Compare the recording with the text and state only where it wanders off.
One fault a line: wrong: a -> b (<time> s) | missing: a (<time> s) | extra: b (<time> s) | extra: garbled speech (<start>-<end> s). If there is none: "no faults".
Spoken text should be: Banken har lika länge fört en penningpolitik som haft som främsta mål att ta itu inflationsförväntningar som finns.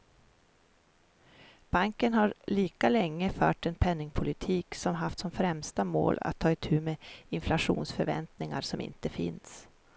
extra: med (6.8 s)
extra: inte (8.8 s)